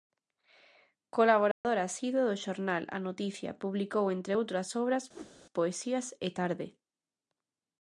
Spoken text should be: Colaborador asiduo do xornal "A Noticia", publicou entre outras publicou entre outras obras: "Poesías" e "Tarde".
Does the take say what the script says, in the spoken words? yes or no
no